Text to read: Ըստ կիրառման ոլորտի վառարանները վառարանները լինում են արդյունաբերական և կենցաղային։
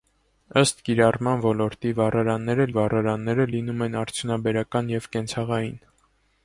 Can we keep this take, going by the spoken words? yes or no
yes